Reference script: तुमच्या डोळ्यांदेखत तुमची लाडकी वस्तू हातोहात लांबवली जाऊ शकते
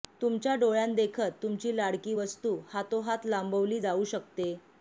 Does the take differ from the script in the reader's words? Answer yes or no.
no